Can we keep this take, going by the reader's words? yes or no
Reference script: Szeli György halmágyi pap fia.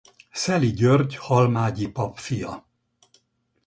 yes